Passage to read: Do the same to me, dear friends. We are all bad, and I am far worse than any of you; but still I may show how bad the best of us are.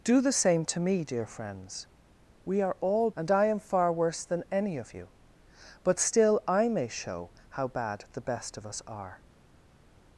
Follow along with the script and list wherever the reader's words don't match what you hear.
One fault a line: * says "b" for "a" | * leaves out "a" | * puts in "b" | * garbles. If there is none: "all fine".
* leaves out "bad"